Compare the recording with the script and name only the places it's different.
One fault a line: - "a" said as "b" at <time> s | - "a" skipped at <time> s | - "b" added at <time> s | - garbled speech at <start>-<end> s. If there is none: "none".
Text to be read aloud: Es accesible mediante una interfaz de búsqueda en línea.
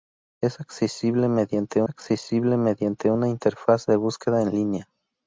- "accesible mediante" added at 1.9 s